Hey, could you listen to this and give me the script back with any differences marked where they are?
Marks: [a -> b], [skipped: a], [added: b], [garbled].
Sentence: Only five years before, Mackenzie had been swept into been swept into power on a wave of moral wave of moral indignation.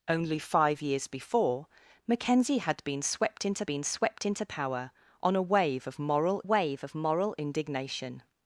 Only five years before, Mackenzie had been swept into been swept into power on a wave of moral wave of moral indignation.